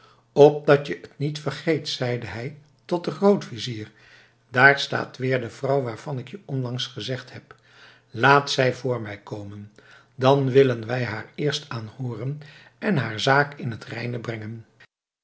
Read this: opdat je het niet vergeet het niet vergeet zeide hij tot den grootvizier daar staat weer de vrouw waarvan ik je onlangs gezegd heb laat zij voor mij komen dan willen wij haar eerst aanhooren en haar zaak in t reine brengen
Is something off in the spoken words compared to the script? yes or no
yes